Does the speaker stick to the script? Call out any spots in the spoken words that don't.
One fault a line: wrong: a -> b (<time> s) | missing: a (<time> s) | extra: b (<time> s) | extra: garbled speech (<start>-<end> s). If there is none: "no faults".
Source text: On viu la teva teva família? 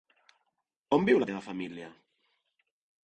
missing: teva (1.4 s)